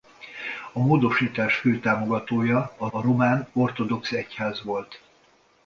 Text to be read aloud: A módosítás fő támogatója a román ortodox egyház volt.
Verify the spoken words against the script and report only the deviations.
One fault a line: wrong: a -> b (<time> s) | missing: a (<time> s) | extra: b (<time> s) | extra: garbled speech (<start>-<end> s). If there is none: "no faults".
extra: a (2.9 s)